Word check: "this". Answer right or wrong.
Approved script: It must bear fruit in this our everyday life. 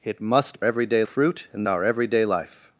wrong